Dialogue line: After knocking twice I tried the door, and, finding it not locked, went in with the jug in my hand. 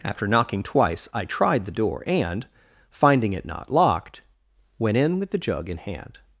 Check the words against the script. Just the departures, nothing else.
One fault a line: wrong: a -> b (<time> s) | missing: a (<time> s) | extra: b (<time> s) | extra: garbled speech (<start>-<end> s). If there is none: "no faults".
missing: my (5.8 s)